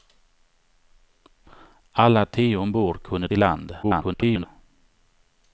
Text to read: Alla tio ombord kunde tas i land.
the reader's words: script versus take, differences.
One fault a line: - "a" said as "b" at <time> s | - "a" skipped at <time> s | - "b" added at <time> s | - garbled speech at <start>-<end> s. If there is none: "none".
- "tas" skipped at 3.3 s
- garbled speech at 3.8-4.5 s